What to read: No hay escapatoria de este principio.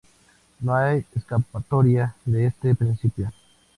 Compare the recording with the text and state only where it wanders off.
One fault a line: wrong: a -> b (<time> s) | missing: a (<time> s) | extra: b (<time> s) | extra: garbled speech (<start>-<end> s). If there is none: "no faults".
no faults